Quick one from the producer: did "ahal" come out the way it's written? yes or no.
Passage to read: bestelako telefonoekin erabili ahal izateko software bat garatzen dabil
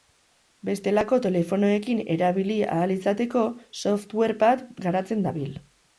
yes